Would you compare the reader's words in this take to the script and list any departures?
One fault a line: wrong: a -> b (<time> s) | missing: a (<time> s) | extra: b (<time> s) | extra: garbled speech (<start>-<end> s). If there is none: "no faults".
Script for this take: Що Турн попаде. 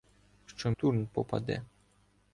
no faults